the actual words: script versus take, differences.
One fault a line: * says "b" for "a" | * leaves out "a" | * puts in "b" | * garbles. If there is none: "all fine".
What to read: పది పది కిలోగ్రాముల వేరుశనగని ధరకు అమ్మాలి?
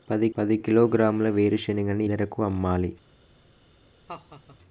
all fine